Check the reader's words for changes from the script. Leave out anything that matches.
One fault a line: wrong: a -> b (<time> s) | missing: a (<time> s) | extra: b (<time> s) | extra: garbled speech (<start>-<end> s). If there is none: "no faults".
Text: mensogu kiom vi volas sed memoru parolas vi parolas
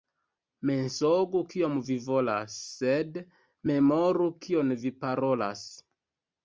wrong: parolas -> kion (4.5 s)